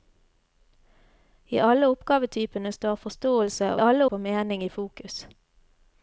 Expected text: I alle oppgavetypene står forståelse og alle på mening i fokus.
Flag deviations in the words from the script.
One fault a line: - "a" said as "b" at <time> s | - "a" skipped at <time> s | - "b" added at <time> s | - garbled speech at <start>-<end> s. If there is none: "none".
none